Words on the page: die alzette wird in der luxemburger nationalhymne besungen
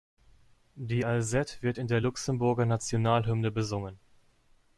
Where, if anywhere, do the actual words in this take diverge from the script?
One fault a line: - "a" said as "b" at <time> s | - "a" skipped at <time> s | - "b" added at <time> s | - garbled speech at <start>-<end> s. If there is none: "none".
none